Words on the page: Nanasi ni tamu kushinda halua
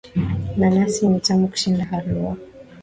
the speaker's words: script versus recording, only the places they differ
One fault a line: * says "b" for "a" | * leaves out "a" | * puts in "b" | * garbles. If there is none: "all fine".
all fine